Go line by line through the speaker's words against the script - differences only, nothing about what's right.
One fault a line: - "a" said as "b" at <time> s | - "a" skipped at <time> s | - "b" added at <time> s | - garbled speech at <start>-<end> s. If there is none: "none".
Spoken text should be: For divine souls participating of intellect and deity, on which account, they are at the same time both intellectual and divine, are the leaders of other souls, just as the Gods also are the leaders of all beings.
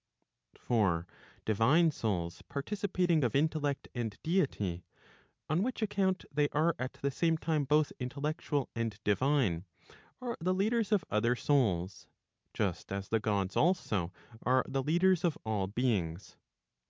none